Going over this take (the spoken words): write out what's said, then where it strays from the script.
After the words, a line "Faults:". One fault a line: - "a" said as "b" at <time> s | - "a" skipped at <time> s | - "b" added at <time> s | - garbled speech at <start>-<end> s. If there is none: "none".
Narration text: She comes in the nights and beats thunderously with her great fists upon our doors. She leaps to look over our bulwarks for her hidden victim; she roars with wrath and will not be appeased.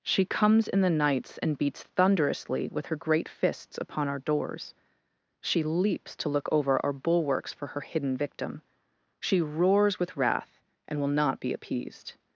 She comes in the nights and beats thunderously with her great fists upon our doors. She leaps to look over our bulwarks for her hidden victim; she roars with wrath and will not be appeased.
Faults:
none